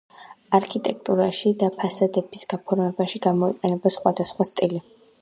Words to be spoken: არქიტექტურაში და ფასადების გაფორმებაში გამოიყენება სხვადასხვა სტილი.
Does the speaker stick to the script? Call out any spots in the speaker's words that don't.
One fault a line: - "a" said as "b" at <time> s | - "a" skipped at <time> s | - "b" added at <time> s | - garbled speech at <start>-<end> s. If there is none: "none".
none